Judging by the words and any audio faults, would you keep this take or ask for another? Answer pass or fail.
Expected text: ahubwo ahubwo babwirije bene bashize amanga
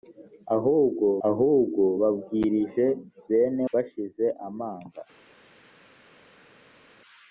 pass